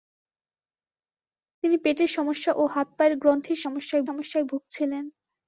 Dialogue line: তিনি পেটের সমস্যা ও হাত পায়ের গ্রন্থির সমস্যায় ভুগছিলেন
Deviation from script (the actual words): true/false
true